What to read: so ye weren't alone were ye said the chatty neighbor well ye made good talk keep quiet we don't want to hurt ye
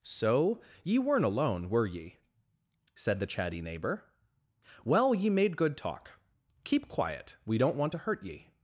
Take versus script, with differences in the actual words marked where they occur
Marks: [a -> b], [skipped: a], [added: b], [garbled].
so ye weren't alone were ye said the chatty neighbor well ye made good talk keep quiet we don't want to hurt ye